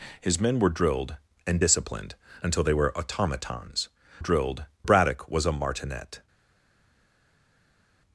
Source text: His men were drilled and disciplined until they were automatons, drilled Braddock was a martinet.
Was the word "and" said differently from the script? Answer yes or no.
no